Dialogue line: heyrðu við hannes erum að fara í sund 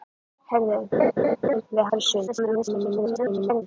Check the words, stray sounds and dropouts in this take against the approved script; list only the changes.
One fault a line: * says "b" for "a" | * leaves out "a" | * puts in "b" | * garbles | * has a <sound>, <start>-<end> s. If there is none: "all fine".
* has a laugh, 0.9-1.6 s
* leaves out "hannes erum"
* garbles